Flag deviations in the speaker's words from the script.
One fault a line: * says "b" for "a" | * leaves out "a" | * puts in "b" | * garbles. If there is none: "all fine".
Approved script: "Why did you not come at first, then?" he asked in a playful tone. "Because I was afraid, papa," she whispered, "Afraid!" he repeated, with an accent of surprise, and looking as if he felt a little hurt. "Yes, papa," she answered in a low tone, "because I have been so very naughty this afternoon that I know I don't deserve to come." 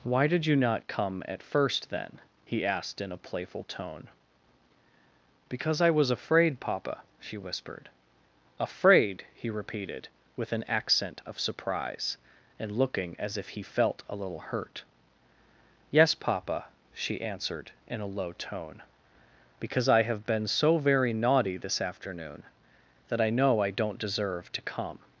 all fine